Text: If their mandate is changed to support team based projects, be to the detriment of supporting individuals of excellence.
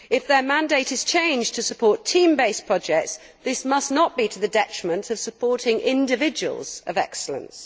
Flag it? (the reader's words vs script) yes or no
yes